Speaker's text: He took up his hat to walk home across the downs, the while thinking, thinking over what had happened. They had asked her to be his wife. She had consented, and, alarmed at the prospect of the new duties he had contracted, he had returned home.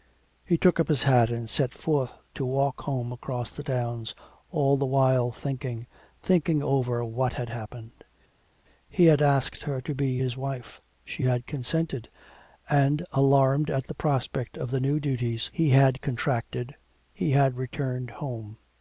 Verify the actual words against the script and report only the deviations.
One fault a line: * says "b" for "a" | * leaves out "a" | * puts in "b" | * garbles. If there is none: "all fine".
* puts in "and set forth"
* puts in "all"
* says "He" for "They"